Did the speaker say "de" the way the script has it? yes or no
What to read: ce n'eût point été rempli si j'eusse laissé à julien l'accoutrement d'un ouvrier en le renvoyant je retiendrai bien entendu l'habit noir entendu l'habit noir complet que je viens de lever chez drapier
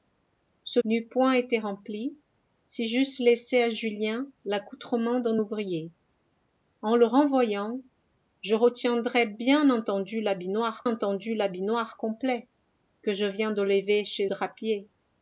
yes